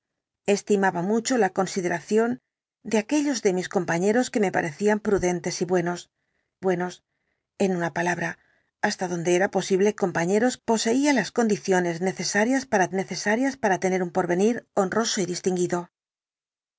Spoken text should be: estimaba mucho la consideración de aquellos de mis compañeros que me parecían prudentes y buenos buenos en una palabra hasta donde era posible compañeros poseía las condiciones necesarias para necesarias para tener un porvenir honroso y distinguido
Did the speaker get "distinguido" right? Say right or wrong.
right